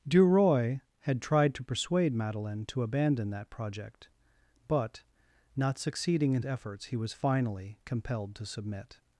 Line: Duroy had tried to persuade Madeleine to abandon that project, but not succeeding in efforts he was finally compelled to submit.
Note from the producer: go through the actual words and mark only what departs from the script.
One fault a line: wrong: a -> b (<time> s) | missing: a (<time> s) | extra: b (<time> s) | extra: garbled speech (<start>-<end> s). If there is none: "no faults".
no faults